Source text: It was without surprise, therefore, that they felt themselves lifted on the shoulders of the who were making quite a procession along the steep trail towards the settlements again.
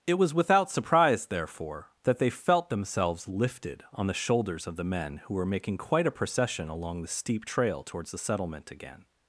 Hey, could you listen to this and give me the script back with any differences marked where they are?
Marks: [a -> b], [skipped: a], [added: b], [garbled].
It was without surprise, therefore, that they felt themselves lifted on the shoulders of the [added: men] who were making quite a procession along the steep trail towards the [settlements -> settlement] again.